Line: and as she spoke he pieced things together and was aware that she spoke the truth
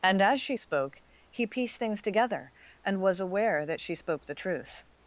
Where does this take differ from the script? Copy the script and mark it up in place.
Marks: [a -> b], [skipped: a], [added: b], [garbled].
and as she spoke he pieced things together and was aware that she spoke the truth